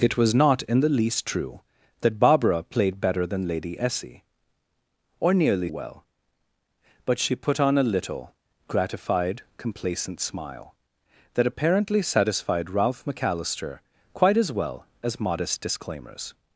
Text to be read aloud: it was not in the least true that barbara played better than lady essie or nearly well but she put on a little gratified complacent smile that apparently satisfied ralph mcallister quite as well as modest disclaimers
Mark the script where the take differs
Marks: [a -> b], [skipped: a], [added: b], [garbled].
it was not in the least true that barbara played better than lady essie or nearly well but she put on a little gratified complacent smile that apparently satisfied ralph mcallister quite as well as modest disclaimers